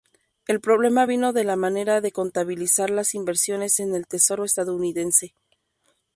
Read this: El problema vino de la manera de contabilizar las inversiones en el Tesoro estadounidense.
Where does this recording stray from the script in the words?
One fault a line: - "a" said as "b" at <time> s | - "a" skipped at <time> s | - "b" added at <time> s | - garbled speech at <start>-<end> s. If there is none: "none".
none